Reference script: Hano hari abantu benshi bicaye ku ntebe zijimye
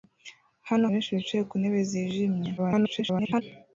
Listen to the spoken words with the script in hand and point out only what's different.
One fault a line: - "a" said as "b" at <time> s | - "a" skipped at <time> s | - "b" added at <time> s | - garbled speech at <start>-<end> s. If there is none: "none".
- "hari abantu" skipped at 0.8 s
- garbled speech at 2.6-3.4 s